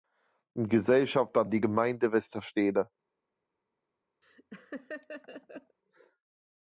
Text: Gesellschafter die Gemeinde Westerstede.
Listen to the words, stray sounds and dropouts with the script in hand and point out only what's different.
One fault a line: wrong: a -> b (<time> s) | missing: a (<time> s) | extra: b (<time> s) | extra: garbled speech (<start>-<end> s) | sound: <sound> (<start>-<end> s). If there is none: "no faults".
sound: laugh (4.2-5.8 s)